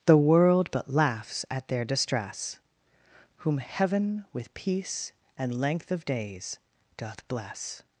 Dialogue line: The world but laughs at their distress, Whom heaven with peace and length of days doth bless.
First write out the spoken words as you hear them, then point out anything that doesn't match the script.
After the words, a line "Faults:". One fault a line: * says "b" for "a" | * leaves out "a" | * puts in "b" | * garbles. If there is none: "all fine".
The world but laughs at their distress, Whom heaven with peace and length of days doth bless.
Faults:
all fine